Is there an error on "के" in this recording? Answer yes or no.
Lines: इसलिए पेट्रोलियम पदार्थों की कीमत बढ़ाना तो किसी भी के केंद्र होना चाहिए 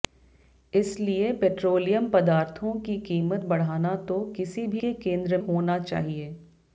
no